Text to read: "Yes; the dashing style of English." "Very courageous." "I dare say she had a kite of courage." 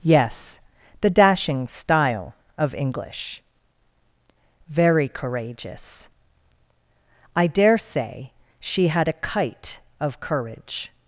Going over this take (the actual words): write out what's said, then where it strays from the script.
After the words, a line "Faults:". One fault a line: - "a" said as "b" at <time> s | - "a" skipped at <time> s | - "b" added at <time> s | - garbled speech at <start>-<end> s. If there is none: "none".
"Yes; the dashing style of English." "Very courageous." "I dare say she had a kite of courage."
Faults:
none